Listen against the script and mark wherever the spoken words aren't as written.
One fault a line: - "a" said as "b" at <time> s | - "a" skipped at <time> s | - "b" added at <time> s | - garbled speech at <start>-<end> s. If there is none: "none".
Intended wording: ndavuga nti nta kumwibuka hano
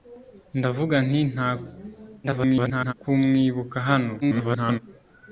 - garbled speech at 2.2-2.9 s
- garbled speech at 4.2-4.8 s